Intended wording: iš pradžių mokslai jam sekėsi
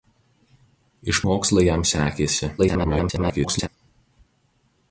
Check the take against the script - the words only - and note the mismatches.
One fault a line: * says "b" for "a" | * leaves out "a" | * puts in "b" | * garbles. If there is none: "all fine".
* leaves out "pradžių"
* garbles